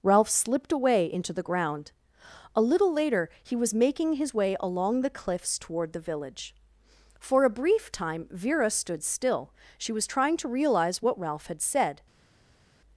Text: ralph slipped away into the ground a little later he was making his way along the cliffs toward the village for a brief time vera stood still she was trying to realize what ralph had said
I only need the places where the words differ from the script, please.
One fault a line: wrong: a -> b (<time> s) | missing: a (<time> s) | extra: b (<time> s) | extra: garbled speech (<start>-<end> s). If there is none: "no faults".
no faults